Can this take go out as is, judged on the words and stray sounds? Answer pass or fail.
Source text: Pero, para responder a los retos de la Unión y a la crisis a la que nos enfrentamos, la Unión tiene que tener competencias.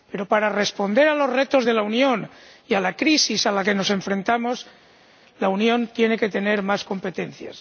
fail